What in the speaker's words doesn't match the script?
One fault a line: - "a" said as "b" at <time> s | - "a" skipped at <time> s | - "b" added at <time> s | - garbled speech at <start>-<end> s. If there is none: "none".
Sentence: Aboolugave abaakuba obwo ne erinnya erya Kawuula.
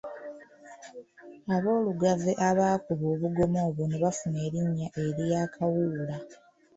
- "obugoma" added at 3.1 s
- "bafuna" added at 4.0 s